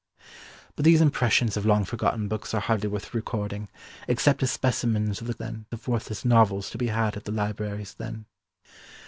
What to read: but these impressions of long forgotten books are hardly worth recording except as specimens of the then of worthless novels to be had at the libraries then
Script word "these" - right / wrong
right